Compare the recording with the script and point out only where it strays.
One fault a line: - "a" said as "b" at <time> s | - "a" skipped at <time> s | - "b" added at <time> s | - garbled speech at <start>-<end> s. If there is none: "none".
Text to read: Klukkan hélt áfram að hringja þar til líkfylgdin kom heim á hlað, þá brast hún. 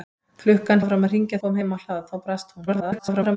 - "hélt" skipped at 0.8 s
- "þar til líkfylgdin" skipped at 1.4 s
- garbled speech at 2.7-3.4 s